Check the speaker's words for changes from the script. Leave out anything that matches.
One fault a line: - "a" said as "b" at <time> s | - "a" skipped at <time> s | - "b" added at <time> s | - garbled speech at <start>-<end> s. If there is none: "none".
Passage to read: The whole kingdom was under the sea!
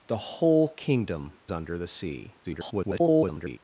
- "was" skipped at 1.4 s
- garbled speech at 2.4-3.6 s